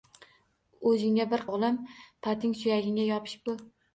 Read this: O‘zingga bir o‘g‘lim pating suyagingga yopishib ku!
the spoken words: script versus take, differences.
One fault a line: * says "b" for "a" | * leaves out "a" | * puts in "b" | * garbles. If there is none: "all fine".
all fine